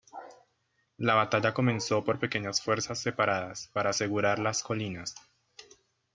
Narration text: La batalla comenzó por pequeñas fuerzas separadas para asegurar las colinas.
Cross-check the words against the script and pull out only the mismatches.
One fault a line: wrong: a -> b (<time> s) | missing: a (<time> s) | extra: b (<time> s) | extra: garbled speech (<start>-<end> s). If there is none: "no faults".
no faults